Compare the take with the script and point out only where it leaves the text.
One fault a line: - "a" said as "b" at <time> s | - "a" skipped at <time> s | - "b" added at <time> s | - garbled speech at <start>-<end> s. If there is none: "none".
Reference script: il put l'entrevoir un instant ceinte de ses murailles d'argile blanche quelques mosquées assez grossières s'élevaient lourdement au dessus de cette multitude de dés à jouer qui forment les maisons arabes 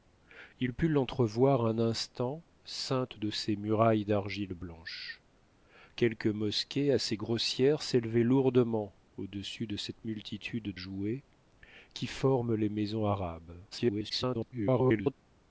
- "de dés à" skipped at 10.8 s
- garbled speech at 13.7-15.1 s